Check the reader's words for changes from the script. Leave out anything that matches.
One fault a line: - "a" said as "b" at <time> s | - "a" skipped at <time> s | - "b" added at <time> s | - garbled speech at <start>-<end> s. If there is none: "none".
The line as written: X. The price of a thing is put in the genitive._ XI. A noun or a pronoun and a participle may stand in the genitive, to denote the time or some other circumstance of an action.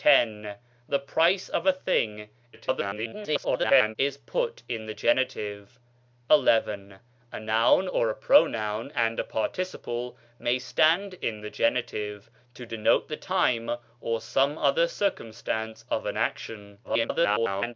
- garbled speech at 2.5-4.0 s
- garbled speech at 16.8-17.7 s